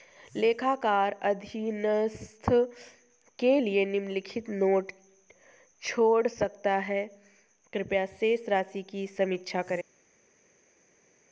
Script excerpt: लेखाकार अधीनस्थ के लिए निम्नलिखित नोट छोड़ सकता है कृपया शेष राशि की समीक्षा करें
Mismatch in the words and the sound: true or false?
false